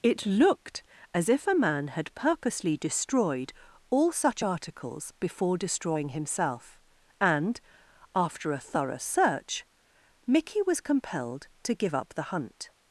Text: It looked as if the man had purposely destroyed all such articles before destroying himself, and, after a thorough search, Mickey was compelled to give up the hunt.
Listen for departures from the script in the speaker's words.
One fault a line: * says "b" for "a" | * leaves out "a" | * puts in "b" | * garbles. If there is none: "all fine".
* says "a" for "the"